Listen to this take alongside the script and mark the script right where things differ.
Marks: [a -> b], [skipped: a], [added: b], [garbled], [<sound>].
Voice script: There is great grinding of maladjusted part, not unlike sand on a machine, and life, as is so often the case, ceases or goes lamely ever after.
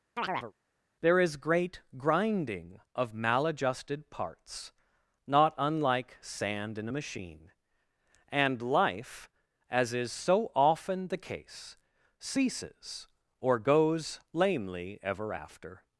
[chirp] There is great grinding of maladjusted [part, -> parts] not unlike sand [on -> in] a machine, and life, as is so often the case, ceases or goes lamely ever after.